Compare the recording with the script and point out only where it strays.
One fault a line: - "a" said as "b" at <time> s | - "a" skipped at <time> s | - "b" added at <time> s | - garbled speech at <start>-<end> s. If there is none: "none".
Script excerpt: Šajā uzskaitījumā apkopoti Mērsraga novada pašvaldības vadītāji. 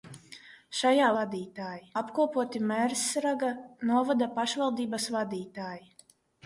- "uzskaitījumā" said as "vadītāji" at 1.2 s